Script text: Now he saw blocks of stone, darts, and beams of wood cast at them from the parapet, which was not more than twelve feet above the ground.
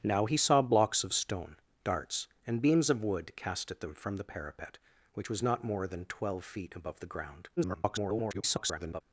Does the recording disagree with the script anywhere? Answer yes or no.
yes